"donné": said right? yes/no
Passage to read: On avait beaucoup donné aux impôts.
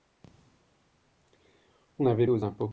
no